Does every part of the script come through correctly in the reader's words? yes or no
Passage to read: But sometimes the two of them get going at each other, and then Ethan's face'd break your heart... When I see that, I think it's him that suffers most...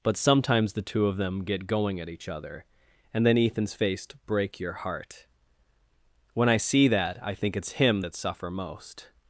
no